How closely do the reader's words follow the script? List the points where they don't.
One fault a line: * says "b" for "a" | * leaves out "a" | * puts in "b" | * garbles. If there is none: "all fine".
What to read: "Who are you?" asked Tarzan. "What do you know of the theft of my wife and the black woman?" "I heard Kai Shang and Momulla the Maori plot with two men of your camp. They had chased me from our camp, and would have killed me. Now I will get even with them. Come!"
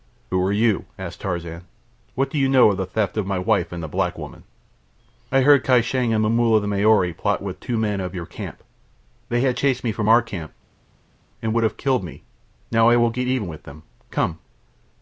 all fine